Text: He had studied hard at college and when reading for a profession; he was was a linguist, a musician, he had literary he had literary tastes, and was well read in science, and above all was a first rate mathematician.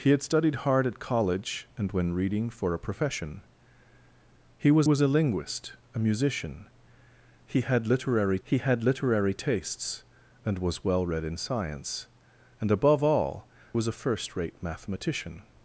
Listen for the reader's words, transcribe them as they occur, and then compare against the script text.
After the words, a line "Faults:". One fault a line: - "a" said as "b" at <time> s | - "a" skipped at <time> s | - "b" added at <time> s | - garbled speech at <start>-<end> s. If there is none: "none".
He had studied hard at college and when reading for a profession; he was was a linguist, a musician, he had literary he had literary tastes, and was well read in science, and above all was a first rate mathematician.
Faults:
none